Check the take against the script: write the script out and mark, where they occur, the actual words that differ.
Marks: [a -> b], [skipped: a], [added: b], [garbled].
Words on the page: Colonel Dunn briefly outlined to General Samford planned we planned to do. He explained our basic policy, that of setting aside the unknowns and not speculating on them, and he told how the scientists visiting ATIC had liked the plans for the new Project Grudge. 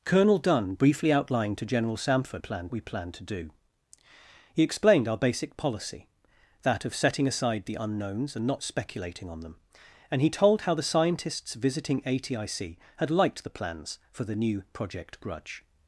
Colonel Dunn briefly outlined to General Samford planned we planned to do. He explained our basic policy, that of setting aside the unknowns and not speculating on them, and he told how the scientists visiting ATIC had liked the plans for the new Project Grudge.